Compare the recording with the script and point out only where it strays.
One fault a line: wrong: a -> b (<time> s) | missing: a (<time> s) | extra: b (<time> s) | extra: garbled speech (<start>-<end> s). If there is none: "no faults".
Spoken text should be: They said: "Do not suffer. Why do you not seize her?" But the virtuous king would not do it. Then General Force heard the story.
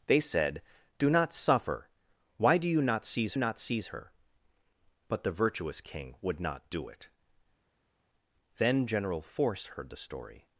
extra: not seize (3.3 s)